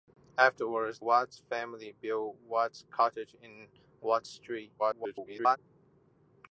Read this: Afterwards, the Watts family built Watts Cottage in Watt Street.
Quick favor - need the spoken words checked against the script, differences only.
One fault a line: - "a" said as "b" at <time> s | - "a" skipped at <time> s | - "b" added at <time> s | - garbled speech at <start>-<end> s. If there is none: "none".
- "the" skipped at 1.0 s
- garbled speech at 4.8-5.6 s